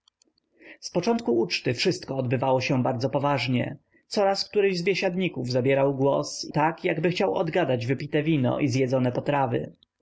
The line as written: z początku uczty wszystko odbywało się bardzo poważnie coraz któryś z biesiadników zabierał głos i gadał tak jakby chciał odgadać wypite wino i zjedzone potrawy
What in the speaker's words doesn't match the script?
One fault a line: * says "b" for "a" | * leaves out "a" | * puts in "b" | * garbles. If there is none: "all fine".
* leaves out "i gadał"